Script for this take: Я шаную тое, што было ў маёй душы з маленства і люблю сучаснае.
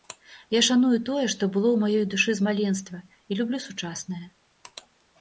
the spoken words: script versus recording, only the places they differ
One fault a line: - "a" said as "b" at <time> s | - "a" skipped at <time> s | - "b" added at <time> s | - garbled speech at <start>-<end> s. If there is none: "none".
none